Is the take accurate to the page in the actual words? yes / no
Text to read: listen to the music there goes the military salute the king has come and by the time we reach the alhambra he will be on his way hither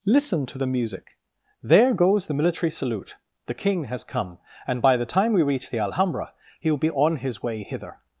yes